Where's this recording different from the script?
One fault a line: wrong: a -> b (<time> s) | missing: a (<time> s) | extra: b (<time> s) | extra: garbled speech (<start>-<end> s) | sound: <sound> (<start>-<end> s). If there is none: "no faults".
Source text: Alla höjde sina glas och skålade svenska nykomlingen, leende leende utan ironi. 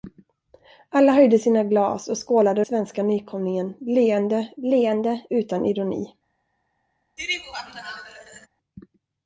sound: laugh (7.2-8.5 s)